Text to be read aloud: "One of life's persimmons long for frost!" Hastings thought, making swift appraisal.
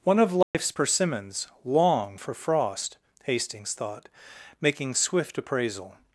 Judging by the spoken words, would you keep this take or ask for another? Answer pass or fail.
pass